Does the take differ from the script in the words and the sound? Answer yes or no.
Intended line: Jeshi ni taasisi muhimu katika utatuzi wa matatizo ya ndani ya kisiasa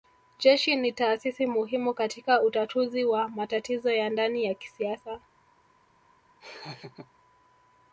yes